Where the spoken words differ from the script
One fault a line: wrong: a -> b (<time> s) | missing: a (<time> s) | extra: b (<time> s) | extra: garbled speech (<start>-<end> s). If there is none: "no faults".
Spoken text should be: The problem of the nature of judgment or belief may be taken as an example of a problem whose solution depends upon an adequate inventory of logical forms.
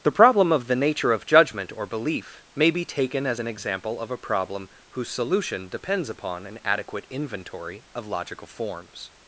no faults